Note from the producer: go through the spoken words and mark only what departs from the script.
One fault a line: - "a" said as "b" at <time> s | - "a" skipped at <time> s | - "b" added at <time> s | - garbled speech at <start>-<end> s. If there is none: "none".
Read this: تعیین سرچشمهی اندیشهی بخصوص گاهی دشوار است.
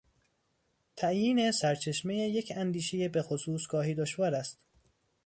- "یک" added at 2.3 s